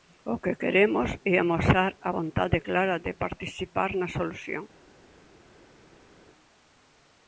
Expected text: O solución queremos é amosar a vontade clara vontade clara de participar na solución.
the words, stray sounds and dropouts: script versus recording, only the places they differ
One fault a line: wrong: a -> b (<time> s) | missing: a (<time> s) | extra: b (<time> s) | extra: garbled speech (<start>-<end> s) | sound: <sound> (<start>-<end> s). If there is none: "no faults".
wrong: solución -> que (0.4 s)
missing: vontade clara (3.0 s)